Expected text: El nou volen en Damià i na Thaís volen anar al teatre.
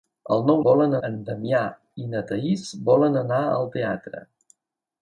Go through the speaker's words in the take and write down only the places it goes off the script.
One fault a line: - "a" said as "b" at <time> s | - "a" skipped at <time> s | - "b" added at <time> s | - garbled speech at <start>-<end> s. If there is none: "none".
none